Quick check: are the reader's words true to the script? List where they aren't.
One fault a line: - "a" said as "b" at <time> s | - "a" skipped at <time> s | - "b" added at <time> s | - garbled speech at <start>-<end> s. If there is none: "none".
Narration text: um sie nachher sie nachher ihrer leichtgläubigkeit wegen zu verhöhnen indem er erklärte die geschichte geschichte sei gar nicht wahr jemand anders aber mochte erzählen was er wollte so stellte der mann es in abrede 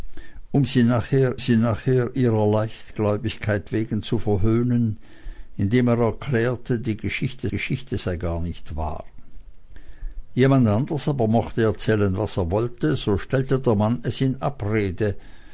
none